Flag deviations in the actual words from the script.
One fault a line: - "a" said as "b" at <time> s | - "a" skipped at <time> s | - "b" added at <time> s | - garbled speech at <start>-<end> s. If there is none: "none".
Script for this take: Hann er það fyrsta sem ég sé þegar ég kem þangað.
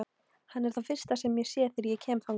none